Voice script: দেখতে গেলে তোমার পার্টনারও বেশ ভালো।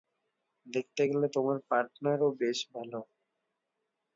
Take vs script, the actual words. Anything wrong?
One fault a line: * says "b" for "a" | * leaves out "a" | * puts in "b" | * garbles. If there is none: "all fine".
all fine